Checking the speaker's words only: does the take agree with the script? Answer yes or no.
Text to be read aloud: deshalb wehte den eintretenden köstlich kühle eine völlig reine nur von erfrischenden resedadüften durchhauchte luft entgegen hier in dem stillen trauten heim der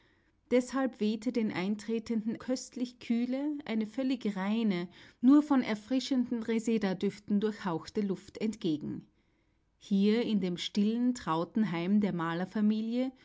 yes